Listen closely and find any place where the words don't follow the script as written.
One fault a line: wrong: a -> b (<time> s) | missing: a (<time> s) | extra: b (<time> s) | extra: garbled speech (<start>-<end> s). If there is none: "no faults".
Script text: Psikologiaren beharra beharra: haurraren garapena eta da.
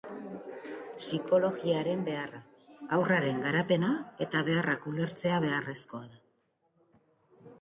missing: beharra (2.4 s)
extra: beharrak ulertzea beharrezkoa (4.5 s)